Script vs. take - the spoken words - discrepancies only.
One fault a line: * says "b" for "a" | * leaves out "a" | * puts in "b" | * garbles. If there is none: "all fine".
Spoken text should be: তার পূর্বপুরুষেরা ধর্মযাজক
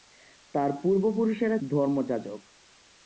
all fine